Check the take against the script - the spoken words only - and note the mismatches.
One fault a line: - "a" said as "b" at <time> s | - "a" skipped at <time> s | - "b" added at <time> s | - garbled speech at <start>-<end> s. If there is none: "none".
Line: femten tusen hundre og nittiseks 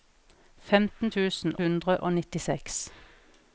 none